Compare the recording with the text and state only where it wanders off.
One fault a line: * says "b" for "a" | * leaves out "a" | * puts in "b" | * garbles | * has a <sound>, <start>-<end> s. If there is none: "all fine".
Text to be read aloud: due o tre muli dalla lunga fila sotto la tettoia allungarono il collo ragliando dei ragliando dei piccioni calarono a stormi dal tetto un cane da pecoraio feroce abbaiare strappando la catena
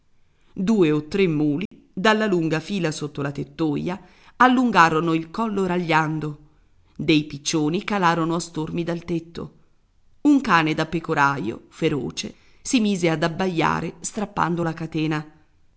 * has a dropout, 1.7-1.7 s
* leaves out "ragliando dei"
* puts in "si mise ad"